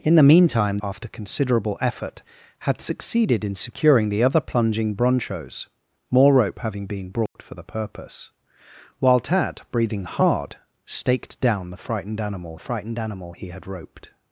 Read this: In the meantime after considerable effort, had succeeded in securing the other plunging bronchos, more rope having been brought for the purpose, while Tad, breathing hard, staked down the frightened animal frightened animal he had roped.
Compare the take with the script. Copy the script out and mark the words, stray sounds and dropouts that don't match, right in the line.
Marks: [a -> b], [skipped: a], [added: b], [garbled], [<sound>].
In the meantime after considerable effort, had succeeded in securing the other plunging bronchos, more rope having been brought [dropout] for the purpose, while Tad, breathing hard, staked down the frightened animal frightened animal he had roped.